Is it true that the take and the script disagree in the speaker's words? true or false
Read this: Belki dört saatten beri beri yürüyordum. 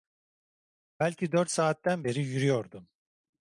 true